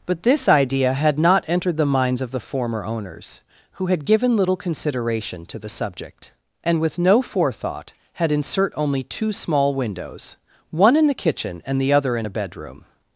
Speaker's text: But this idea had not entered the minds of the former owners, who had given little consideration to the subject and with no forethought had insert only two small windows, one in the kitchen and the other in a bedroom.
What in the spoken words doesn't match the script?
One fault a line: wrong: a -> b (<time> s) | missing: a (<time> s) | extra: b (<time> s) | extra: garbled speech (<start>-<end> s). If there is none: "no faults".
no faults